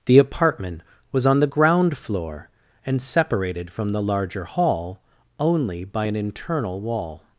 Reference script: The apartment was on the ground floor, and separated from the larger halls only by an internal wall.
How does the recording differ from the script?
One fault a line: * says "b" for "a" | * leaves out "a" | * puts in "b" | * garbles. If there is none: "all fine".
* says "hall" for "halls"